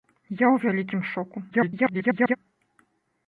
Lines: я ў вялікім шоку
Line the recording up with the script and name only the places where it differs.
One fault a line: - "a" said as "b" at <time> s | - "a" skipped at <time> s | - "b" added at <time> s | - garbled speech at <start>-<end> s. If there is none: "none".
- garbled speech at 1.5-2.4 s